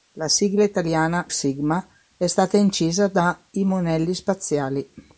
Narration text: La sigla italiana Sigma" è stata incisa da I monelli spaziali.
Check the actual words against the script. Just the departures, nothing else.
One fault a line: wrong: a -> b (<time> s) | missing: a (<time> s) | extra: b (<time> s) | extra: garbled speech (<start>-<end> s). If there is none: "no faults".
no faults